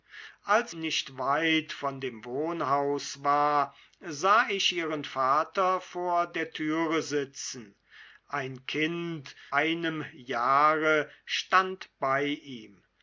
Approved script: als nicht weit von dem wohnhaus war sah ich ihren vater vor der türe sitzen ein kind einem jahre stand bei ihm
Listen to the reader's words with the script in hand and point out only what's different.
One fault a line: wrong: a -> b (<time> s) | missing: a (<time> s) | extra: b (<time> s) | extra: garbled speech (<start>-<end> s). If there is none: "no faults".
no faults